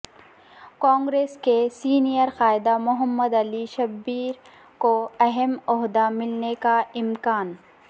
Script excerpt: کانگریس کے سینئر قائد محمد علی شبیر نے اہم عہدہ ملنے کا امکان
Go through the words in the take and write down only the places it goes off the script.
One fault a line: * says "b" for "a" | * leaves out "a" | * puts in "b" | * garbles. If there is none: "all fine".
* says "کو" for "نے"